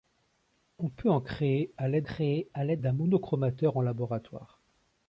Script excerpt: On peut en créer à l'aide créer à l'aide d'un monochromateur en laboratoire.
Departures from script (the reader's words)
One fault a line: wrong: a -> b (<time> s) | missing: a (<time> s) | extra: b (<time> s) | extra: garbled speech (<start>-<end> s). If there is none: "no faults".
no faults